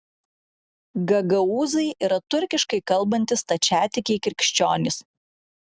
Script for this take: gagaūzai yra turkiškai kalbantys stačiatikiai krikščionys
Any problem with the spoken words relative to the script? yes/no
no